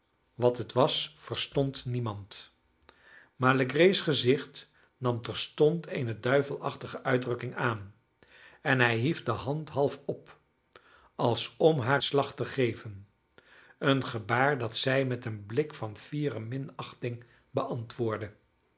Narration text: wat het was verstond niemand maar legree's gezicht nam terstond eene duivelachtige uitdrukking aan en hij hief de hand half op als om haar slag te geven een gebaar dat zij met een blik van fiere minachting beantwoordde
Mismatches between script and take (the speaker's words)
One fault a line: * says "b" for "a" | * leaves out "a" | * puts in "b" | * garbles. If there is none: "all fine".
all fine